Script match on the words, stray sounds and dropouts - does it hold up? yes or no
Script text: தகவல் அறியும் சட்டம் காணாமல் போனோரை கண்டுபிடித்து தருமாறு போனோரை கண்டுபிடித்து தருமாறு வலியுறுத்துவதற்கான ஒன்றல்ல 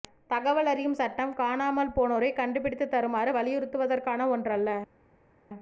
no